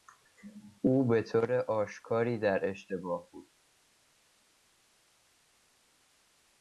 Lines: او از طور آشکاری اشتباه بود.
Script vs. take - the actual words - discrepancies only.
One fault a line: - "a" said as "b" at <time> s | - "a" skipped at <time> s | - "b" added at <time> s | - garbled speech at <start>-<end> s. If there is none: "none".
- "از" said as "به" at 1.1 s
- "در" added at 2.4 s